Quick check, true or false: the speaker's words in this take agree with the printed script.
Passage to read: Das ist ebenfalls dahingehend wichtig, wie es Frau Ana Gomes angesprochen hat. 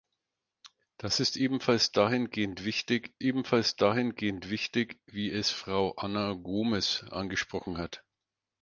false